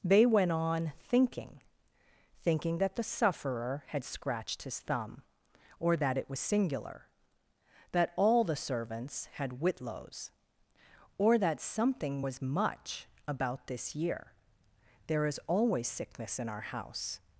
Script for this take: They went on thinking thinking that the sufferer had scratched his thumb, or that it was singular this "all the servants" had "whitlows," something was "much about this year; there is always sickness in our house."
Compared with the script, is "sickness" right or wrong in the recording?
right